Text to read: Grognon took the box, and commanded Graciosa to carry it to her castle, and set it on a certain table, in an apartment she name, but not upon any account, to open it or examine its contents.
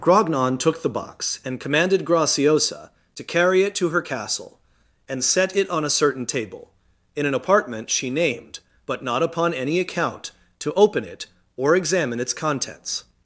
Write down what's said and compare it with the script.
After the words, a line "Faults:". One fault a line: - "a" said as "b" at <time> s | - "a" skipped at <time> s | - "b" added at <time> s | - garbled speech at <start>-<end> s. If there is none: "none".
Grognon took the box, and commanded Graciosa to carry it to her castle, and set it on a certain table, in an apartment she named, but not upon any account, to open it or examine its contents.
Faults:
- "name" said as "named" at 8.1 s